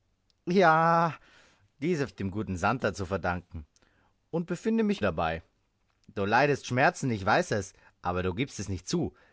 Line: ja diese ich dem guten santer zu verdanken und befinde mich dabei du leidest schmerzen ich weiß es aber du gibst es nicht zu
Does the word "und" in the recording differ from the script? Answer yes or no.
no